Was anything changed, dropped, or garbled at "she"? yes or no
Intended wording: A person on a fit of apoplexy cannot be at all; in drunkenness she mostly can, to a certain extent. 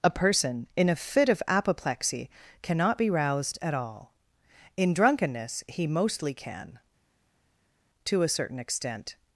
yes